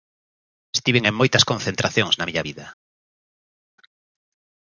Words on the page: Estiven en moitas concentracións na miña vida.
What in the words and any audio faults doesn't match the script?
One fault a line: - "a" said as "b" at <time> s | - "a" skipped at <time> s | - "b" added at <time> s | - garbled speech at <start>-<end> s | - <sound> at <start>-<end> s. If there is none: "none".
none